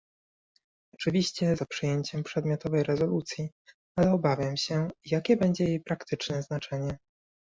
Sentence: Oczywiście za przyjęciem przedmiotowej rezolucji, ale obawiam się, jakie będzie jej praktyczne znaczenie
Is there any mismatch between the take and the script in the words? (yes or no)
no